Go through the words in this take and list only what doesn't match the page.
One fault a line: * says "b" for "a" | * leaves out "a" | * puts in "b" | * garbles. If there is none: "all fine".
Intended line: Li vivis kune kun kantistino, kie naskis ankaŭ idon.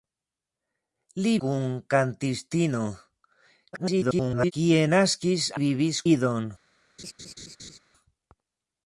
* leaves out "vivis kune"
* garbles
* says "vivis" for "ankaŭ"